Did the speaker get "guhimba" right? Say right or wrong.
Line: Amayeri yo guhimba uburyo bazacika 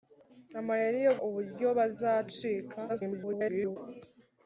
wrong